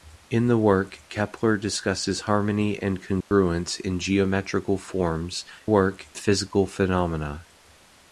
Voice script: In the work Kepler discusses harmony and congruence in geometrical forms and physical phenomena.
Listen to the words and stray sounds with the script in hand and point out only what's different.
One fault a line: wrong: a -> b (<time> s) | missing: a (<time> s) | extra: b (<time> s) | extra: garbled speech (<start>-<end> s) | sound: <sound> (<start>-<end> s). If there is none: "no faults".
sound: dropout (3.2-3.3 s)
wrong: and -> work (5.6 s)